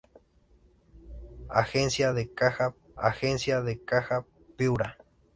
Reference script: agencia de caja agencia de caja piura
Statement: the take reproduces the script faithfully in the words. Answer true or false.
true